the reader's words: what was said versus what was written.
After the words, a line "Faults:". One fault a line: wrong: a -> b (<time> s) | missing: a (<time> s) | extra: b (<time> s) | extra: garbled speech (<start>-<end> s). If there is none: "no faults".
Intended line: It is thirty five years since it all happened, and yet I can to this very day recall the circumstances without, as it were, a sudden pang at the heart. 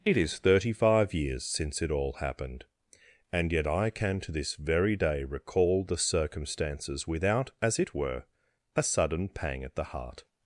It is thirty five years since it all happened, and yet I can to this very day recall the circumstances without, as it were, a sudden pang at the heart.
Faults:
no faults